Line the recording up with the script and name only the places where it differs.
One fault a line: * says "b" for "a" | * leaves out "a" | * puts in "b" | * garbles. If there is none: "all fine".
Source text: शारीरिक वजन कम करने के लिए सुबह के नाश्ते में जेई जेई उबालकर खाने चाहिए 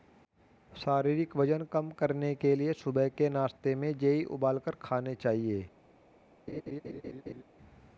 * leaves out "जेई"